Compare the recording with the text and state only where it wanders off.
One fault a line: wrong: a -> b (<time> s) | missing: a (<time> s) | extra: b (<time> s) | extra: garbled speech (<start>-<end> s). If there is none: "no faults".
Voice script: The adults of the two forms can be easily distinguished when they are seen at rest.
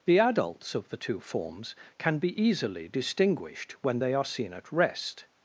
no faults